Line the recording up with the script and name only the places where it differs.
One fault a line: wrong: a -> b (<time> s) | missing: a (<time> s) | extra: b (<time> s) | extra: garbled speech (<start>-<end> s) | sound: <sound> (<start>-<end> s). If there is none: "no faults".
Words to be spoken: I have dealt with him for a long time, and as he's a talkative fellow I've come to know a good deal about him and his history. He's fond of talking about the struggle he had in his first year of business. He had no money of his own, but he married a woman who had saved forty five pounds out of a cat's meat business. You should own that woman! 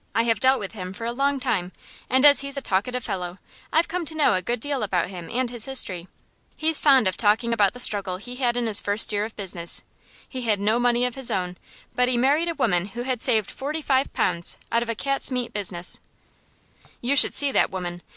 wrong: own -> see (17.3 s)